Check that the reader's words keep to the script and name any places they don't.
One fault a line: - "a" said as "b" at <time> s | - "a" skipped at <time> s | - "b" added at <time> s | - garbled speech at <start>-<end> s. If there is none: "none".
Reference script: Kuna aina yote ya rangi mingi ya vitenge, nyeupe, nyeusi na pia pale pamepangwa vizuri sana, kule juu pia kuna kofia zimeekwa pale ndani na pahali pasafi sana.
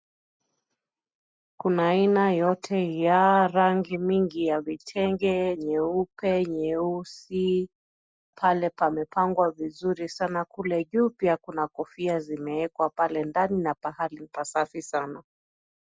- "na pia" skipped at 7.7 s